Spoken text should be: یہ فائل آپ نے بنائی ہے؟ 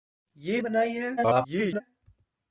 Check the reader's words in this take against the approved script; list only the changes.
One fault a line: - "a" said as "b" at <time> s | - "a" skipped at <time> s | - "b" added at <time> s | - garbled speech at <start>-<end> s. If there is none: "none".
- "فائل آپ نے" skipped at 0.6 s
- garbled speech at 1.2-1.8 s